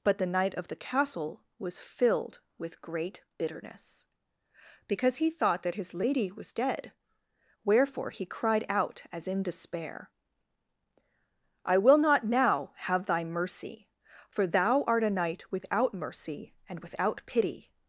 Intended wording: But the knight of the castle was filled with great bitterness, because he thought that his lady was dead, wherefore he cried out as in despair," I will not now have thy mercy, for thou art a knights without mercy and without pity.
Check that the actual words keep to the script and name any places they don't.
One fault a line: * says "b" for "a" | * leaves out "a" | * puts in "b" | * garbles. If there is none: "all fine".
* says "knight" for "knights"